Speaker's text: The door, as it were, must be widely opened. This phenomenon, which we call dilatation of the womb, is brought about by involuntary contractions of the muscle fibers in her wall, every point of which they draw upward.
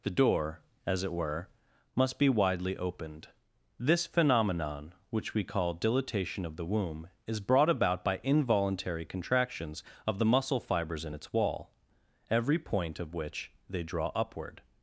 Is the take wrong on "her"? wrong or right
wrong